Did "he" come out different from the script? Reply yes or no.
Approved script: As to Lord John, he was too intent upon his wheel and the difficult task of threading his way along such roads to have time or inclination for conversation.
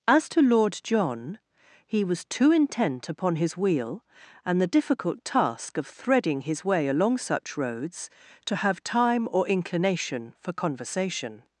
no